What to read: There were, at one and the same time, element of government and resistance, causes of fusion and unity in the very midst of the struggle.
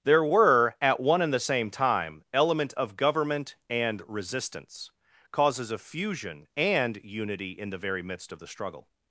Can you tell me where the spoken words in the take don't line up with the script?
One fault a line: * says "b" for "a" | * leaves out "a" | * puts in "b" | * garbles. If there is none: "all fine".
all fine